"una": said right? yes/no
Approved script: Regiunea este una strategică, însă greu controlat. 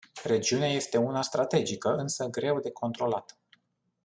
yes